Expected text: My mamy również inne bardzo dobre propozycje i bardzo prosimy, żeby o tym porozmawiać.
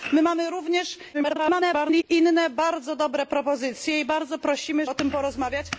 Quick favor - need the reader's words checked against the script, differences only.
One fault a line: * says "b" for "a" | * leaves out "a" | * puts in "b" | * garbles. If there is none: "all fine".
* garbles
* leaves out "żeby"